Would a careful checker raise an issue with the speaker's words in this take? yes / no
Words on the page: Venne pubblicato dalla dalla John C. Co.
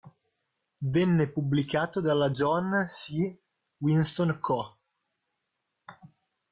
yes